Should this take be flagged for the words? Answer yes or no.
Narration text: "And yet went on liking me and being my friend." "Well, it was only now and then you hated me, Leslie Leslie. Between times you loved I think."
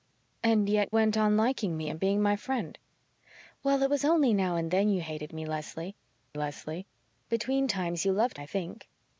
no